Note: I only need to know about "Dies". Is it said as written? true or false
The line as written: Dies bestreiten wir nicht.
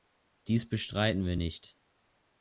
true